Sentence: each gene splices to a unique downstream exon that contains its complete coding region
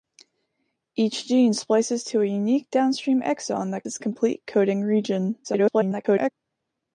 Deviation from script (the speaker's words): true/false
true